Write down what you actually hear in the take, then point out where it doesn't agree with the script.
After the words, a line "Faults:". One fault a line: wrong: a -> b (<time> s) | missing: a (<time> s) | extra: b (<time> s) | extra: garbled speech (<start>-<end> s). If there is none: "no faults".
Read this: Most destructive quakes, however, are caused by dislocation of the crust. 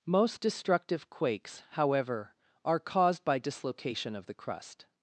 Most destructive quakes, however, are caused by dislocation of the crust.
Faults:
no faults